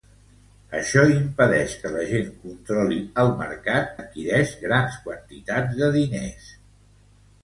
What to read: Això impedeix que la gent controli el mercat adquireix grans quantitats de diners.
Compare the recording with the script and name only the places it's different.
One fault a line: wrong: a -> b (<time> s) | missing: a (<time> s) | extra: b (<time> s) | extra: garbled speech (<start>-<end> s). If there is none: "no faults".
no faults